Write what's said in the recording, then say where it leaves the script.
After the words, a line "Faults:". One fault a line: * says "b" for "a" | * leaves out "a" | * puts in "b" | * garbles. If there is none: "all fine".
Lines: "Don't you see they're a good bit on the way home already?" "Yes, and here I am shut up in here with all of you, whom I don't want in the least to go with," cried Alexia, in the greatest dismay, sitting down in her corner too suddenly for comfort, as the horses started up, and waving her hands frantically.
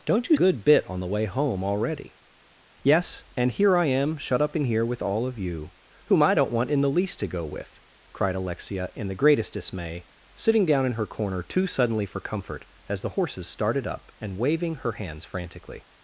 "Don't you good bit on the way home already?" "Yes, and here I am shut up in here with all of you, whom I don't want in the least to go with," cried Alexia, in the greatest dismay, sitting down in her corner too suddenly for comfort, as the horses started up, and waving her hands frantically.
Faults:
* leaves out "see they're a"